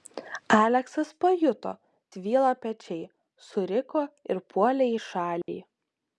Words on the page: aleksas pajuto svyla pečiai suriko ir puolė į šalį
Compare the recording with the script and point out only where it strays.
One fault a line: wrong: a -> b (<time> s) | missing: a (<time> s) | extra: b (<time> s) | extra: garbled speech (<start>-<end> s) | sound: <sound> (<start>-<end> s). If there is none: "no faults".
sound: dropout (5.4-5.5 s)